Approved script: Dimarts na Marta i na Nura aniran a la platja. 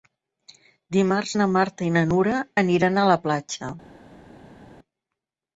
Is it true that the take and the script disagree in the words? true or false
false